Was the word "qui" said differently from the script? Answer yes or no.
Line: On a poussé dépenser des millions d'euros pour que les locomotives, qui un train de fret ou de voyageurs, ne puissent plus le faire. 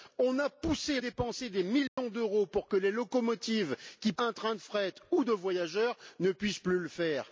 no